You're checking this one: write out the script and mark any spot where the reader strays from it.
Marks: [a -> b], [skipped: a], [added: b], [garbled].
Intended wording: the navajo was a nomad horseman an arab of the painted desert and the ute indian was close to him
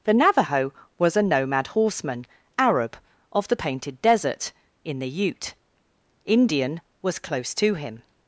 the navajo was a nomad horseman [skipped: an] arab of the painted desert [and -> in] the ute indian was close to him